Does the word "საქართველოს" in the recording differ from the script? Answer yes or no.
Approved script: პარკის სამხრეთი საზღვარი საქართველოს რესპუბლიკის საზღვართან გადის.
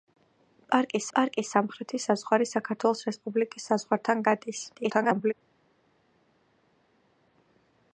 no